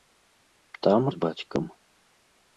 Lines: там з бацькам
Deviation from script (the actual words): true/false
false